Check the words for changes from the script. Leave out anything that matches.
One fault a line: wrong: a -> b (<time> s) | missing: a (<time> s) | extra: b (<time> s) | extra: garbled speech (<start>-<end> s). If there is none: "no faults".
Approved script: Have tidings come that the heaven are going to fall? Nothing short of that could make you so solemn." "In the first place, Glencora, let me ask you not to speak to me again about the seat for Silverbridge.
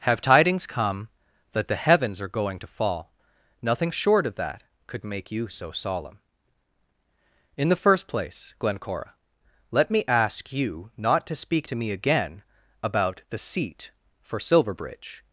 wrong: heaven -> heavens (1.8 s)